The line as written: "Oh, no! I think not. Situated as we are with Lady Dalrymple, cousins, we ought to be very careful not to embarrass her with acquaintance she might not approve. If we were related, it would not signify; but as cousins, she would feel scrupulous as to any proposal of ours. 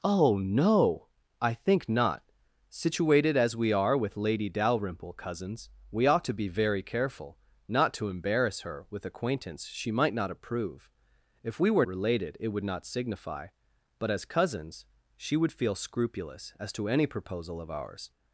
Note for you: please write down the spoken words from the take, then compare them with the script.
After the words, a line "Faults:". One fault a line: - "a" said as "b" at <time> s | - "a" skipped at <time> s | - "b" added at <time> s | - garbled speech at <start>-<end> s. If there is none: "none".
"Oh, no! I think not. Situated as we are with Lady Dalrymple, cousins, we ought to be very careful not to embarrass her with acquaintance she might not approve. If we were related, it would not signify; but as cousins, she would feel scrupulous as to any proposal of ours.
Faults:
none